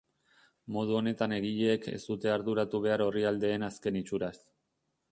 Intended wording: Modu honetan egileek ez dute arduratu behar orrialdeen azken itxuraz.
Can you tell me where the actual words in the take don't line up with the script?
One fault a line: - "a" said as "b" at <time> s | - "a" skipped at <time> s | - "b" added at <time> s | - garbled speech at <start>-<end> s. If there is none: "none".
none